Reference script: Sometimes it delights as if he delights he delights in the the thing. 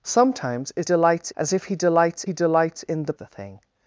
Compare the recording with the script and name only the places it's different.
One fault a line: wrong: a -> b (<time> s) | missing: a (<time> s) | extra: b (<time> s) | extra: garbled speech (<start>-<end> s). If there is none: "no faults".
no faults